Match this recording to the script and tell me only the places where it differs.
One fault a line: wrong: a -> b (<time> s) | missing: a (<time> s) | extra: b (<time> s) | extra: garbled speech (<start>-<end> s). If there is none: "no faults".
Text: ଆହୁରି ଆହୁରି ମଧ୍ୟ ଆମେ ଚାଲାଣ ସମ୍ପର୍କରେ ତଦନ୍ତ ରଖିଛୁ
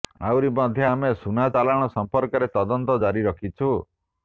missing: ଆହୁରି (0.5 s)
extra: ସୁନା (1.2 s)
extra: ଜାରି (3.1 s)